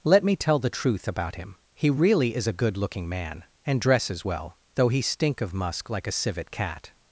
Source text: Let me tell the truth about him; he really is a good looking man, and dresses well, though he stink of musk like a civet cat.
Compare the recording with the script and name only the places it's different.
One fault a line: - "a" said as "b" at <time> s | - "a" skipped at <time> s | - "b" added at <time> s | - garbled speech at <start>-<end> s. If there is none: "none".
none